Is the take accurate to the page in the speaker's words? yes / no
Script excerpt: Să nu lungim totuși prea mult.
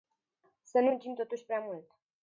yes